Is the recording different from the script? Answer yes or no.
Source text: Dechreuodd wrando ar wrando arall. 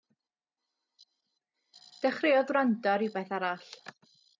yes